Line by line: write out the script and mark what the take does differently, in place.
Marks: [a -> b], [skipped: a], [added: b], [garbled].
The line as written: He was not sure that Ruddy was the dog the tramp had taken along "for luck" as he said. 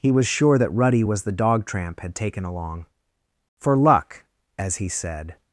He was [skipped: not] sure that Ruddy was the dog [skipped: the] tramp had taken along "for luck" as he said.